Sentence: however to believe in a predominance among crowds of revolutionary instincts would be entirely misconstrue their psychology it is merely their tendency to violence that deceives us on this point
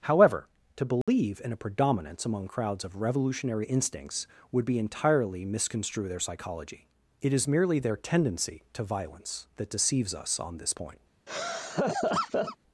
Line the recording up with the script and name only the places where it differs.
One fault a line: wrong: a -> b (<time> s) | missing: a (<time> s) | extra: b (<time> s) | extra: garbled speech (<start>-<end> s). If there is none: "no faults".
no faults